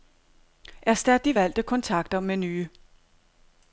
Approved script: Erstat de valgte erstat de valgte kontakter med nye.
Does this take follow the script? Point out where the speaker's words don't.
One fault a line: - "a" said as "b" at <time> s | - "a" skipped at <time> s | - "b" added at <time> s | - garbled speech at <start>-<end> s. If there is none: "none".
- "erstat de valgte" skipped at 1.6 s